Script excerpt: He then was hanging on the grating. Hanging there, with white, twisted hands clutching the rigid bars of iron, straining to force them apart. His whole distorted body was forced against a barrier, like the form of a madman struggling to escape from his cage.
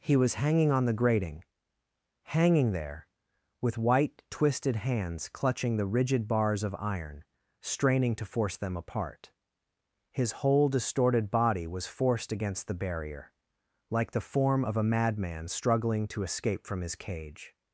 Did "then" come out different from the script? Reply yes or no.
yes